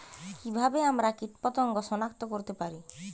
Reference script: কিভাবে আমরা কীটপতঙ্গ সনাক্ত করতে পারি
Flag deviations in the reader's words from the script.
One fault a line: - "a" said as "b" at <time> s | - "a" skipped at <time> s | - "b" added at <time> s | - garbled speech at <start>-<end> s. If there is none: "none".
none